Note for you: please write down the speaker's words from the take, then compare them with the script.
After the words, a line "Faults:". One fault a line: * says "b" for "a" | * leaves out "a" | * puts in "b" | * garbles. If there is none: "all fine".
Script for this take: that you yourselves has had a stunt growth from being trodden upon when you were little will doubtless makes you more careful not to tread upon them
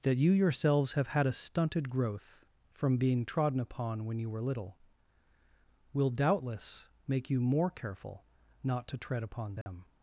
that you yourselves have had a stunted growth from being trodden upon when you were little will doubtless make you more careful not to tread upon them
Faults:
* says "have" for "has"
* says "stunted" for "stunt"
* says "make" for "makes"